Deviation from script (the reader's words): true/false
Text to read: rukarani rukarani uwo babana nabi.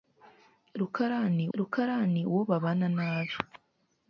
false